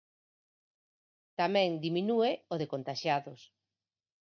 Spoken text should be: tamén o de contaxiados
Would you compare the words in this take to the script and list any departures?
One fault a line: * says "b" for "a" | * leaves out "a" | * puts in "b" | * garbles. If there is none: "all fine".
* puts in "diminúe"